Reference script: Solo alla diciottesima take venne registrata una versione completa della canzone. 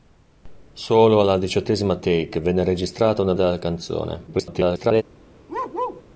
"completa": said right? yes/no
no